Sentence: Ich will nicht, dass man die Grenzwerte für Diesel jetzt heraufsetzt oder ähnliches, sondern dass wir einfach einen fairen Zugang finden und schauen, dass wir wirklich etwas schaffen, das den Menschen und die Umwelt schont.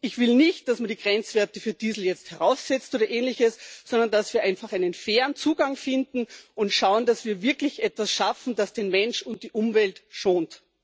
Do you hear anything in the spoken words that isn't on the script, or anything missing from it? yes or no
no